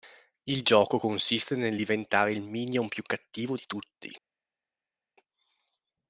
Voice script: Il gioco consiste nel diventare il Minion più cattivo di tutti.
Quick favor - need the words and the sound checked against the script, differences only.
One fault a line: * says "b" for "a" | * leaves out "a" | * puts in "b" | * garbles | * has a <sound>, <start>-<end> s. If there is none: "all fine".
all fine